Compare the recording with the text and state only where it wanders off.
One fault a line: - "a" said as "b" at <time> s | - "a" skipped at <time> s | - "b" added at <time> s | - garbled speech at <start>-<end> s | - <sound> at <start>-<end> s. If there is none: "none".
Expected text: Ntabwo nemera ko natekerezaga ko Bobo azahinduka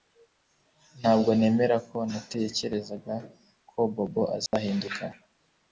- dropout at 4.5-4.5 s